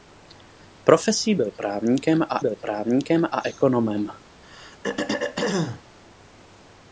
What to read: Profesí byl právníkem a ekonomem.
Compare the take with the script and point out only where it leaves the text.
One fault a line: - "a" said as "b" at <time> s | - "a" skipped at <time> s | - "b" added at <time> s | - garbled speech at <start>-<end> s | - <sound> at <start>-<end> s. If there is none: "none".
- "byl právníkem a" added at 2.4 s
- throat clearing at 4.4-5.8 s